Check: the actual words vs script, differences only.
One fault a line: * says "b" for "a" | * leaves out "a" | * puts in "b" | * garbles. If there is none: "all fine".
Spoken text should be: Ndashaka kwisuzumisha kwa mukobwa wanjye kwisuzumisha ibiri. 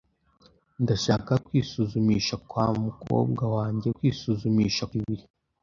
all fine